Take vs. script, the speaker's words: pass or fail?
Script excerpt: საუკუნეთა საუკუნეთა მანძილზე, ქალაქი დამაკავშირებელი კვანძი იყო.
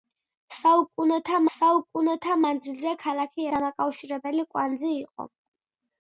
pass